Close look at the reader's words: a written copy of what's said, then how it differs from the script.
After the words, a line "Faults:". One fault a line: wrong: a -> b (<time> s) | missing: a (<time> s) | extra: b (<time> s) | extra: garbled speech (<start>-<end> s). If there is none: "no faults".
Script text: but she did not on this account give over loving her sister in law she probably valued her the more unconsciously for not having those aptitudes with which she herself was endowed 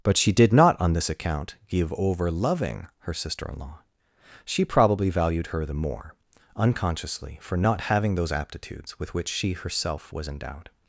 but she did not on this account give over loving her sister in law she probably valued her the more unconsciously for not having those aptitudes with which she herself was endowed
Faults:
no faults